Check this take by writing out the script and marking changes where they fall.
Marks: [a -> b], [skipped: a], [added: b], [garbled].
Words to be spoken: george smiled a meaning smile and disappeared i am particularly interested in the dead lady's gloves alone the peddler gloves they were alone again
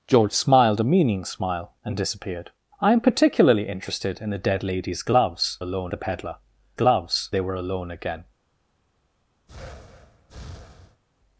george smiled a meaning smile and disappeared i am particularly interested in the dead lady's gloves alone the peddler gloves they were alone again